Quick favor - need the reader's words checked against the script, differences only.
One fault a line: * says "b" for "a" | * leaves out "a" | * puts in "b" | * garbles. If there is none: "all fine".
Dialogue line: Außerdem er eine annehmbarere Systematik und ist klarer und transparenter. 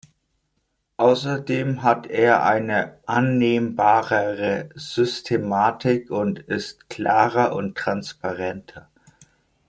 * puts in "hat"